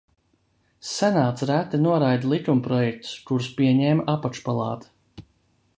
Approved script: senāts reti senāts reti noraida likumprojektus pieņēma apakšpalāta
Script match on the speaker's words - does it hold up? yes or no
no